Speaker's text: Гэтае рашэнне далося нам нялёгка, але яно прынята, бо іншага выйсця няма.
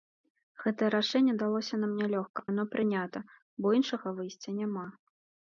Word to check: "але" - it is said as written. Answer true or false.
false